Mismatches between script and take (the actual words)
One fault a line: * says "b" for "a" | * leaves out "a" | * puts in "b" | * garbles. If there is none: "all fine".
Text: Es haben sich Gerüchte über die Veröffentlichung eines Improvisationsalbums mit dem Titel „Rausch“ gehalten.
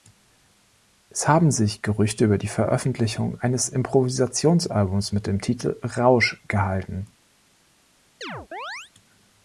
all fine